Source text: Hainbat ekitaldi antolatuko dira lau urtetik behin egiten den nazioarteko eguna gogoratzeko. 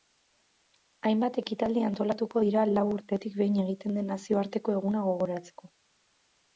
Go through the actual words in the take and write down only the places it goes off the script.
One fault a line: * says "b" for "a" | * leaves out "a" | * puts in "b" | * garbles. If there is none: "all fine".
all fine